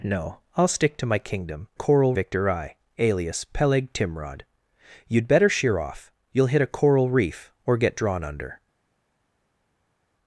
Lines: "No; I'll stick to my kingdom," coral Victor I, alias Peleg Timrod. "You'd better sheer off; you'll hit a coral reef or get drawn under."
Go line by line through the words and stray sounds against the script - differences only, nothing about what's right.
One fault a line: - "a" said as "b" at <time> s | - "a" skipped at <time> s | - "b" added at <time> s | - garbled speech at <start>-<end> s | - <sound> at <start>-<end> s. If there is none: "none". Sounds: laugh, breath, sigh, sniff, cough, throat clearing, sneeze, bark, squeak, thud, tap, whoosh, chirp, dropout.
none